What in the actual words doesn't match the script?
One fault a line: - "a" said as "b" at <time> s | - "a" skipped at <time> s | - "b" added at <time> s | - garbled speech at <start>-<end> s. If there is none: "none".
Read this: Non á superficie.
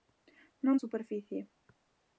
none